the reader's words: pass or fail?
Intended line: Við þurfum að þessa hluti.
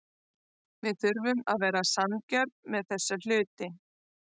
fail